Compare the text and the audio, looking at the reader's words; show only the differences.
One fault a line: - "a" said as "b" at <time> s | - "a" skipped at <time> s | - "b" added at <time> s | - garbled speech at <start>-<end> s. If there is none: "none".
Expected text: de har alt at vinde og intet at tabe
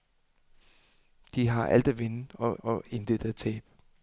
- "og" added at 2.6 s